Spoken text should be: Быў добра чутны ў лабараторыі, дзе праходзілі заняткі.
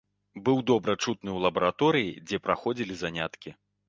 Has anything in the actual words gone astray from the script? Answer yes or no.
no